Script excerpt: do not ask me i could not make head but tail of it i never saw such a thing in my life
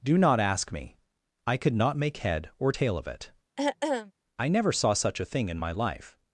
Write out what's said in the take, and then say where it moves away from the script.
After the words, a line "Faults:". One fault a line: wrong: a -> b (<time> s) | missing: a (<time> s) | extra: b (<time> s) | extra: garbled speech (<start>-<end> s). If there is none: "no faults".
do not ask me i could not make head or tail of it i never saw such a thing in my life
Faults:
wrong: but -> or (2.6 s)